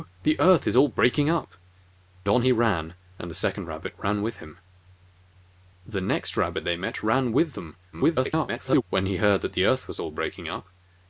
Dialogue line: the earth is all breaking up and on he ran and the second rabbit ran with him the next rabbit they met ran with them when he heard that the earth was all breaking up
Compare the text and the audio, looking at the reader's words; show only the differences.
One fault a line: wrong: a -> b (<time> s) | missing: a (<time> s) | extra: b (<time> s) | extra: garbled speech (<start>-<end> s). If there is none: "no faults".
missing: and (1.5 s)
extra: garbled speech (7.9-8.8 s)